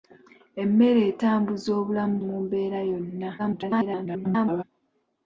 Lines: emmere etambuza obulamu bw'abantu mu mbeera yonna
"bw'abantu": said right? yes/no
no